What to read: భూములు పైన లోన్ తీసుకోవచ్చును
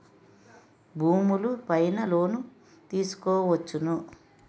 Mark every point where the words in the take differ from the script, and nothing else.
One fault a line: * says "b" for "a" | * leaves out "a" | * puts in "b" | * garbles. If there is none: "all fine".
all fine